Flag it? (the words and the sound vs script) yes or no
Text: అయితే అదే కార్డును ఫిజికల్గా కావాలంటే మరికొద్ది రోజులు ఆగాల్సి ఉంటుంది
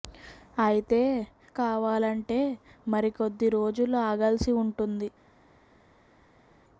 yes